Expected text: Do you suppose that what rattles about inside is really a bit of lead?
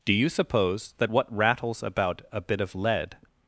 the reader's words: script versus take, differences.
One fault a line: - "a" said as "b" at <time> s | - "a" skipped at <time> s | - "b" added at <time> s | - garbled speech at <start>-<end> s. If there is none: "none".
- "inside is really" skipped at 2.2 s